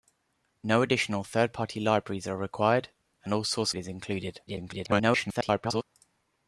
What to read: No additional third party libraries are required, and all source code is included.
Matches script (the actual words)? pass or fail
fail